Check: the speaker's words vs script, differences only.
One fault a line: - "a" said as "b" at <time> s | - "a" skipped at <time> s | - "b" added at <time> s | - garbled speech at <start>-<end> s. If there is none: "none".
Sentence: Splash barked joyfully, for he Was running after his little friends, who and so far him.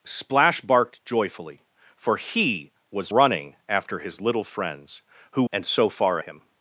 none